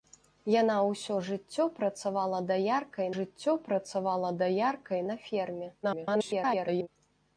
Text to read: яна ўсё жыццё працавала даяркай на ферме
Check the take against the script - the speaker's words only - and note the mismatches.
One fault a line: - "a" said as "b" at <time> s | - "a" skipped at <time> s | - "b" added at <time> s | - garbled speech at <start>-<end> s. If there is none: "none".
- "жыццё працавала даяркай" added at 3.2 s
- garbled speech at 5.8-6.9 s